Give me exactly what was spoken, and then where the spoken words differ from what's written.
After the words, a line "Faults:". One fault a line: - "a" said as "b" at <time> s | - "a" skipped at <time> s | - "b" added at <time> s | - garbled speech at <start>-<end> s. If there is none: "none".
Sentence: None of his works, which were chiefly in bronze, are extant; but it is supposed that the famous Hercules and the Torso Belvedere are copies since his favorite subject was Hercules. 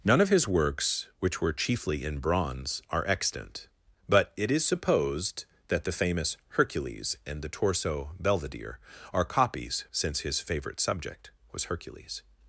None of his works, which were chiefly in bronze, are extant; but it is supposed that the famous Hercules and the Torso Belvedere are copies since his favorite subject was Hercules.
Faults:
none